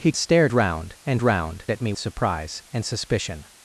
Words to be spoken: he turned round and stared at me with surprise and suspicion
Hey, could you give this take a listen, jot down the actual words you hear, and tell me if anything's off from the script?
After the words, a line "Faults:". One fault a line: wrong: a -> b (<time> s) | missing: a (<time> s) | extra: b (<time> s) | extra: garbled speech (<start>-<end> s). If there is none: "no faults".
he stared round and round at me surprise and suspicion
Faults:
wrong: turned -> stared (0.2 s)
wrong: stared -> round (1.2 s)
missing: with (1.9 s)